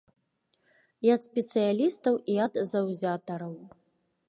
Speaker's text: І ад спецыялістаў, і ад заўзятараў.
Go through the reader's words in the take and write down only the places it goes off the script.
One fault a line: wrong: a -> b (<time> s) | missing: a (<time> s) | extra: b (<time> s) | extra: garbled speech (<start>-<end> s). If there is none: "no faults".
no faults